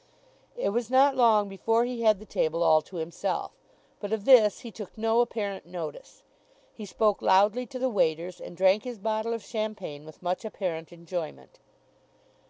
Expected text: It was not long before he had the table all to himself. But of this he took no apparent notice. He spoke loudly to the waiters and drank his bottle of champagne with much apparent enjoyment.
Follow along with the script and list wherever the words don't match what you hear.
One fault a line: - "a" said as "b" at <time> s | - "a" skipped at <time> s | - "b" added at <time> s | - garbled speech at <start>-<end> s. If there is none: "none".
none